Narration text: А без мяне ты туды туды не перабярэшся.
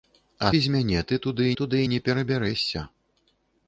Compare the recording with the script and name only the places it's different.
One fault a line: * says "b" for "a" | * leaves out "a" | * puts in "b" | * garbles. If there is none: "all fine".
all fine